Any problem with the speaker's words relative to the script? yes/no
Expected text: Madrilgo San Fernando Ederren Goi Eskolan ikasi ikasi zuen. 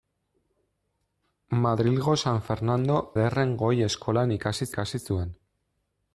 no